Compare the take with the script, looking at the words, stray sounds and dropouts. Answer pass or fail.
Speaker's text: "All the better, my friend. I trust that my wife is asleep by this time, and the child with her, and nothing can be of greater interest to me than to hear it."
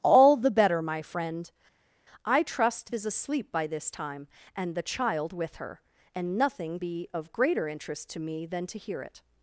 fail